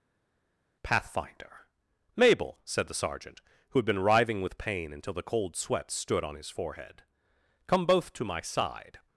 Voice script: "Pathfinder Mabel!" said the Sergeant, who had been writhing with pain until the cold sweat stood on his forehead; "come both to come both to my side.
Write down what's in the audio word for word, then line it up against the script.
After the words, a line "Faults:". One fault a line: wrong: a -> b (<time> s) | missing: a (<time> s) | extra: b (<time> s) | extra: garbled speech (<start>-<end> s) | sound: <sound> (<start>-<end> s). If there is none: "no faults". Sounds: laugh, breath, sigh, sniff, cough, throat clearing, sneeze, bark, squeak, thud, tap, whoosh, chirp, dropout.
"Pathfinder Mabel!" said the Sergeant, who had been writhing with pain until the cold sweat stood on his forehead; "come both to my side.
Faults:
missing: come both to (8.2 s)